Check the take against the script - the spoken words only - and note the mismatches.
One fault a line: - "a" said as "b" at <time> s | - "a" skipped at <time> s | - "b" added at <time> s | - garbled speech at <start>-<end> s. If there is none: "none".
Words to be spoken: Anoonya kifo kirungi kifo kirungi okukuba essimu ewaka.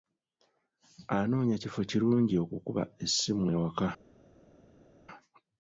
- "kifo kirungi" skipped at 2.4 s